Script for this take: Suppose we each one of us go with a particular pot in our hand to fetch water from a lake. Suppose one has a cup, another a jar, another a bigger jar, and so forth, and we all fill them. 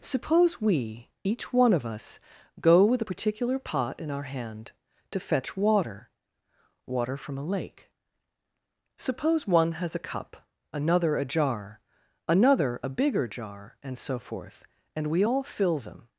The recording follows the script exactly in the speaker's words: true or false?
false